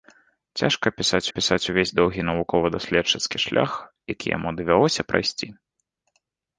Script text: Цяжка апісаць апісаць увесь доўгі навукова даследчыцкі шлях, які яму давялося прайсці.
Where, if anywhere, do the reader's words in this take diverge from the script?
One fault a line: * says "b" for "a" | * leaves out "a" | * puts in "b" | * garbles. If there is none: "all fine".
all fine